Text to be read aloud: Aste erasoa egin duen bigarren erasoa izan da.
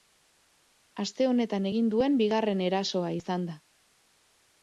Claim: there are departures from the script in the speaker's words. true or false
true